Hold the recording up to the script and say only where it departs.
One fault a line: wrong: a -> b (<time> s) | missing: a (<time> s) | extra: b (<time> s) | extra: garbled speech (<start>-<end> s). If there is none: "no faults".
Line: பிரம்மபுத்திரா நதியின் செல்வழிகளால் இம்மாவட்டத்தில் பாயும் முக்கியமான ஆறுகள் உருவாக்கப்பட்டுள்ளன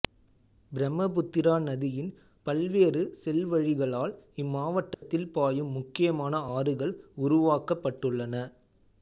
extra: பல்வேறு (2.5 s)